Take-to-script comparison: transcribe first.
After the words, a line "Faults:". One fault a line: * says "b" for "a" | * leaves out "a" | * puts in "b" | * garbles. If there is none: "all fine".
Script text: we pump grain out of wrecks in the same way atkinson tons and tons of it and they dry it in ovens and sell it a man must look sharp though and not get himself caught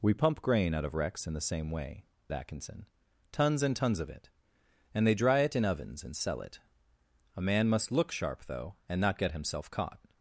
we pump grain out of wrecks in the same way atkinson tons and tons of it and they dry it in ovens and sell it a man must look sharp though and not get himself caught
Faults:
all fine